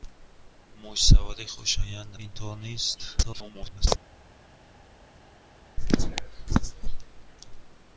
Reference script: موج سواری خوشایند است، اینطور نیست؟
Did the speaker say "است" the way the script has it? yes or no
no